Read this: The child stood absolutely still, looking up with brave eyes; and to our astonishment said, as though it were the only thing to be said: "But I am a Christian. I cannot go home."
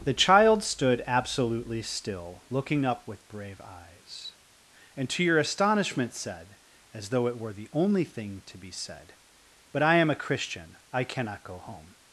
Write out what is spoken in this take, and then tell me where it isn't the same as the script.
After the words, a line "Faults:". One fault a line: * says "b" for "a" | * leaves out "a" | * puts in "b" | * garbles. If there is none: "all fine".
The child stood absolutely still, looking up with brave eyes; and to your astonishment said, as though it were the only thing to be said: "But I am a Christian. I cannot go home."
Faults:
* says "your" for "our"